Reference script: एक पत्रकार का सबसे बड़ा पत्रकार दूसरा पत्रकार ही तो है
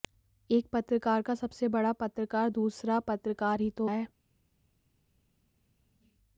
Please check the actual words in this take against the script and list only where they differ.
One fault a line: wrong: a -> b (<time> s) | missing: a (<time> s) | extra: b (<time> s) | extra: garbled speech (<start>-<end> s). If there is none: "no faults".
no faults